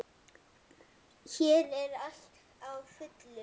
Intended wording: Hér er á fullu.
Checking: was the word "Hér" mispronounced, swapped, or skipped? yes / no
no